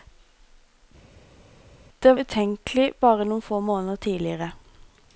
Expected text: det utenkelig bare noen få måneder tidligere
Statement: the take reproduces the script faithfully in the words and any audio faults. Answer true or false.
true